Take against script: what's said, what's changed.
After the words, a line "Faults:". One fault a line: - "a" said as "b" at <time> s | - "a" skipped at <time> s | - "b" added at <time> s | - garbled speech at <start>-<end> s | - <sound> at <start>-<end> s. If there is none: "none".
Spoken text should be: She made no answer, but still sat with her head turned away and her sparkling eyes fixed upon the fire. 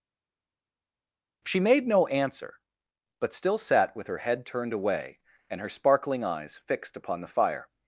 She made no answer, but still sat with her head turned away and her sparkling eyes fixed upon the fire.
Faults:
none